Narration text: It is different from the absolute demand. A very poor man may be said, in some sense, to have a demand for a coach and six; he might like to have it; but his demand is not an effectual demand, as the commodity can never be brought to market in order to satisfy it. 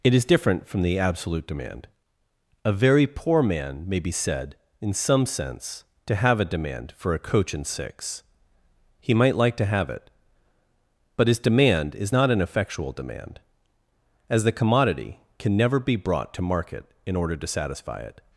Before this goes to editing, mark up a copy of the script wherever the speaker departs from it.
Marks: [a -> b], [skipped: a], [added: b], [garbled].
It is different from the absolute demand. A very poor man may be said, in some sense, to have a demand for a coach and six; he might like to have it; but his demand is not an effectual demand, as the commodity can never be brought to market in order to satisfy it.